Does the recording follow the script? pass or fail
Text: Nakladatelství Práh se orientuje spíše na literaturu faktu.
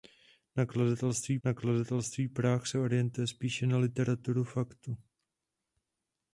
fail